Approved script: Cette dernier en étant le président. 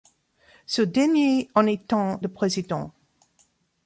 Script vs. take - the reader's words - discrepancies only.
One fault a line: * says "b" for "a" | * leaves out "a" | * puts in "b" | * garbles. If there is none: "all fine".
* says "Ce" for "Cette"